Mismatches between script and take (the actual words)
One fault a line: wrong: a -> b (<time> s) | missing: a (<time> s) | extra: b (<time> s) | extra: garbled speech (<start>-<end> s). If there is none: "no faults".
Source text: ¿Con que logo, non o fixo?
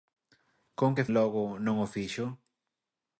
no faults